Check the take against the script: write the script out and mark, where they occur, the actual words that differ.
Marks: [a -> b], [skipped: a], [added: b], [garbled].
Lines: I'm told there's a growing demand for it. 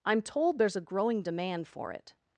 I'm told there's a growing demand for it.